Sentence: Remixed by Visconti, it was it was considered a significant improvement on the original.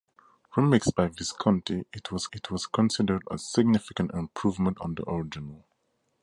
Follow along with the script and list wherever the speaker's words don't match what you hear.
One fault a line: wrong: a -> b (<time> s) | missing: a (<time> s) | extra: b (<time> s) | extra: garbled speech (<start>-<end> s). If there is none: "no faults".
no faults